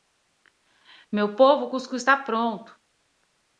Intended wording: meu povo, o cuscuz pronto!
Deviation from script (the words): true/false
true